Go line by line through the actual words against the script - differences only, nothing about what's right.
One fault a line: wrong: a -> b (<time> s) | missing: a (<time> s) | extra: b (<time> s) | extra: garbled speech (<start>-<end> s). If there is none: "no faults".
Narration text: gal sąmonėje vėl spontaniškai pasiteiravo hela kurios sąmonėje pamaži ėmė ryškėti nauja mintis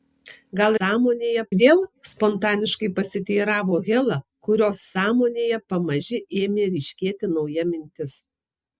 no faults